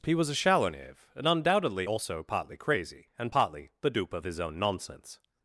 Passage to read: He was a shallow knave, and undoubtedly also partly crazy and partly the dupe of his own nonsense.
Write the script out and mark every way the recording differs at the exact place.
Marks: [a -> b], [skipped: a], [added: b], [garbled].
He was a shallow knave, and undoubtedly also partly crazy and partly the dupe of his own nonsense.